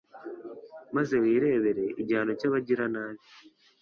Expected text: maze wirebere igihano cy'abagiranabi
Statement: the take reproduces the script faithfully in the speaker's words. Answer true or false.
true